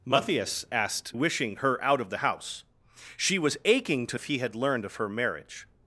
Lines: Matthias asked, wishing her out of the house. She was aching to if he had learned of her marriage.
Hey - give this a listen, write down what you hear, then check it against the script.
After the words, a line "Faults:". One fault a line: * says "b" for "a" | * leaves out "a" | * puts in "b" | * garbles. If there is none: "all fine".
Matthias asked, wishing her out of the house. She was aching to if he had learned of her marriage.
Faults:
all fine